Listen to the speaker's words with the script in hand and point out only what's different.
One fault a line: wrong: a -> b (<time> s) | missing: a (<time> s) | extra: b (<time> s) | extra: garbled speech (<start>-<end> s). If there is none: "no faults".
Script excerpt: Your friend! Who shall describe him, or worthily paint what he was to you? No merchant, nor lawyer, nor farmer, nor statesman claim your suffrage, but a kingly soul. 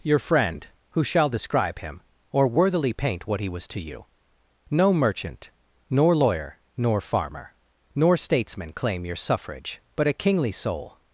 no faults